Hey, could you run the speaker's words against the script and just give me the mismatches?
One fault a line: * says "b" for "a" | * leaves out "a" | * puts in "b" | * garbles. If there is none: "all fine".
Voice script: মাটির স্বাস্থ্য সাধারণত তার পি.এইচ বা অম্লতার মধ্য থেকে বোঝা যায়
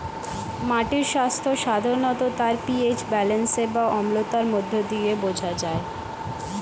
* puts in "ব্যালেন্স"
* says "দিয়ে" for "থেকে"